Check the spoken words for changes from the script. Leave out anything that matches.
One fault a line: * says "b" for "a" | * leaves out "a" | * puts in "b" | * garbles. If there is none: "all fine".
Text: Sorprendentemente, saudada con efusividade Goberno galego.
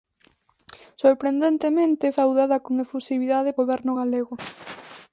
all fine